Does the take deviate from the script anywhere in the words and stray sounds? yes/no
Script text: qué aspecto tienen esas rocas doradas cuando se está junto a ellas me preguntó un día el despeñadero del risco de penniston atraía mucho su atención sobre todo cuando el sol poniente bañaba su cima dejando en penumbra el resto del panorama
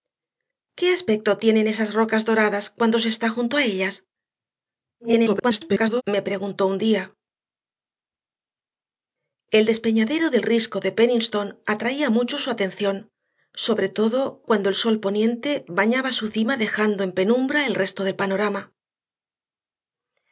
yes